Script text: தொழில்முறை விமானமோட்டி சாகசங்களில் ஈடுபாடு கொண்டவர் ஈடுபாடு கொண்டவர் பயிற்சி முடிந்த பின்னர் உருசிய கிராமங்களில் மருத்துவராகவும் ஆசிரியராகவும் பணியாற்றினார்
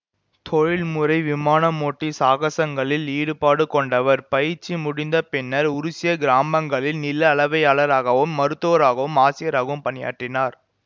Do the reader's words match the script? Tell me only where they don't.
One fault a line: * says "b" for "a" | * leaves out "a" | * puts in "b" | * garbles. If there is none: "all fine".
* leaves out "ஈடுபாடு கொண்டவர்"
* puts in "நில அளவையாளராகவும்"